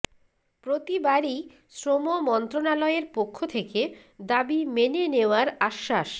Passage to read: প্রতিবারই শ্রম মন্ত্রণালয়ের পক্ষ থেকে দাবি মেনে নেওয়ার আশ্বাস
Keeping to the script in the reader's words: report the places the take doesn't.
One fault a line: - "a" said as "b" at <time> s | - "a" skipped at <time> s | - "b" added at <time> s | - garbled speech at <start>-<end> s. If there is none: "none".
none